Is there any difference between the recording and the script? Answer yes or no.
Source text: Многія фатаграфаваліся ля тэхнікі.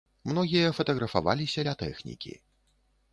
no